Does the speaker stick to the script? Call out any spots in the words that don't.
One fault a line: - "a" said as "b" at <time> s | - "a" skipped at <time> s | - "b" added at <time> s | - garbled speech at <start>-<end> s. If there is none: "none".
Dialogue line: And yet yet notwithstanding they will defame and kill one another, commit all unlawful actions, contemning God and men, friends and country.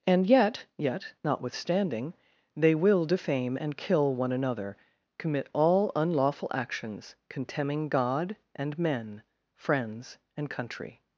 none